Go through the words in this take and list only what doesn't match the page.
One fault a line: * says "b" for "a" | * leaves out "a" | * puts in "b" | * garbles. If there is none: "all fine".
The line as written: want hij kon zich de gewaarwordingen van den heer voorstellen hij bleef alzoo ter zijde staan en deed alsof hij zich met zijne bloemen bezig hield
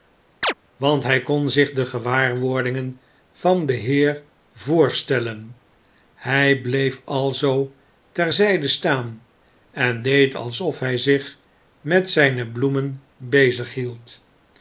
all fine